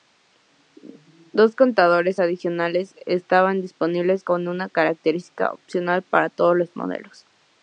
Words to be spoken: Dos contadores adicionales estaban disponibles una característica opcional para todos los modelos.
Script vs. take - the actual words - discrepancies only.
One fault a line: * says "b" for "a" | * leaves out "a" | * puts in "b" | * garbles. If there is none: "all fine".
* puts in "como"